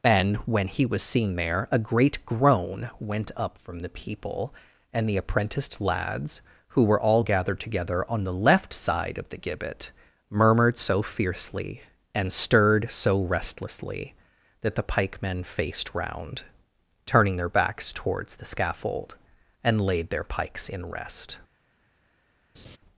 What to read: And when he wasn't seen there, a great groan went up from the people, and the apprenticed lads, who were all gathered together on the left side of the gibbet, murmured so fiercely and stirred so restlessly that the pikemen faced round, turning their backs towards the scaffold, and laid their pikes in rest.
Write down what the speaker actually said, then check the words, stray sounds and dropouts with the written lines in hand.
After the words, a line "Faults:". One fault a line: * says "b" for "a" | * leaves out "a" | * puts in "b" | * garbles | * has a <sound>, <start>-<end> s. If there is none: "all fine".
And when he was seen there, a great groan went up from the people, and the apprenticed lads, who were all gathered together on the left side of the gibbet, murmured so fiercely and stirred so restlessly that the pikemen faced round, turning their backs towards the scaffold, and laid their pikes in rest.
Faults:
* says "was" for "wasn't"
* has a laugh, 22.5-22.8 s